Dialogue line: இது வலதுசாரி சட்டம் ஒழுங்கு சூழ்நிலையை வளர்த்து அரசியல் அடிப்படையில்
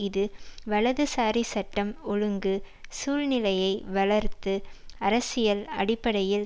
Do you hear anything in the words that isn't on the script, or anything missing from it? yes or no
no